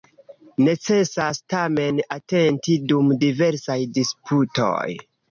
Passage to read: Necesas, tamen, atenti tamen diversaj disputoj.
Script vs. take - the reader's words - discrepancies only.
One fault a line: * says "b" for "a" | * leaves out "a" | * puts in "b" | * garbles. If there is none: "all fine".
* says "dum" for "tamen"